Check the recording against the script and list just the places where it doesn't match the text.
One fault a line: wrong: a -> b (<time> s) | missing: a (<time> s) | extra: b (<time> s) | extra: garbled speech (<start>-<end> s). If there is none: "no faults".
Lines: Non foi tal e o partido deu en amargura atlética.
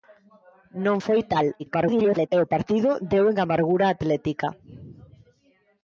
extra: garbled speech (1.6-2.3 s)